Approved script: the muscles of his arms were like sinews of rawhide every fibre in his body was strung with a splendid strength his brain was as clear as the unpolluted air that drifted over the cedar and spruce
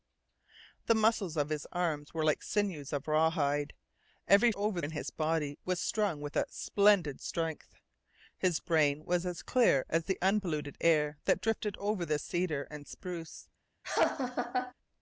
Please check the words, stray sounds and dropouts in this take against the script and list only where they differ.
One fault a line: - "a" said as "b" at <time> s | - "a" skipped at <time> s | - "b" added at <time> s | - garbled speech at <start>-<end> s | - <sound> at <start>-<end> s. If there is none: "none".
- "fibre" said as "over" at 4.5 s
- laugh at 13.8-14.7 s